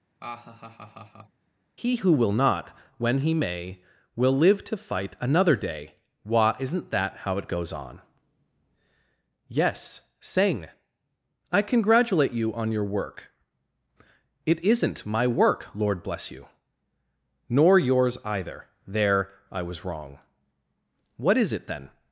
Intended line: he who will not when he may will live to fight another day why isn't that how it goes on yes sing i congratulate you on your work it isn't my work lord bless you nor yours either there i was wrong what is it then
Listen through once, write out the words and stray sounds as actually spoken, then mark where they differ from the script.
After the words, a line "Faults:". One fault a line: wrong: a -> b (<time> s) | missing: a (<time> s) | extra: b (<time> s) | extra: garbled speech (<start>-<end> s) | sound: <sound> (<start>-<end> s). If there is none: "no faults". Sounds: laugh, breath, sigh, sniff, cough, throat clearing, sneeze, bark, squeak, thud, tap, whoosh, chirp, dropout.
he who will not when he may will live to fight another day why isn't that how it goes on yes sing i congratulate you on your work it isn't my work lord bless you nor yours either there i was wrong what is it then
Faults:
sound: laugh (0.2-1.4 s)